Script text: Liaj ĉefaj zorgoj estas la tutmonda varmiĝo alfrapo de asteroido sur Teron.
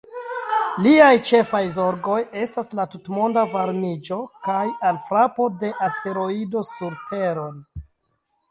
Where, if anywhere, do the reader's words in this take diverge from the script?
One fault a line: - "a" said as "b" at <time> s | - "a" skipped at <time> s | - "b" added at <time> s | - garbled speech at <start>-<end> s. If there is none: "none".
- "kaj" added at 4.5 s